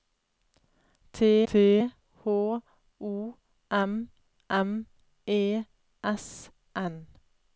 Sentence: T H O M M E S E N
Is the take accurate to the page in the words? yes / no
no